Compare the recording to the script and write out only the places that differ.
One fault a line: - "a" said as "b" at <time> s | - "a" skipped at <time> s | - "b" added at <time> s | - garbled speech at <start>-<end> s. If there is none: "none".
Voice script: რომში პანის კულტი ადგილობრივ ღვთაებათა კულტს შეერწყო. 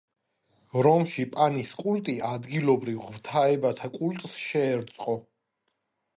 none